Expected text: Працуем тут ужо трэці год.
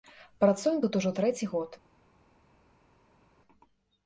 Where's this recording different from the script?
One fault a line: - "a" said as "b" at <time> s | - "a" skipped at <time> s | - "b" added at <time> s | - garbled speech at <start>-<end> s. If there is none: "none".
none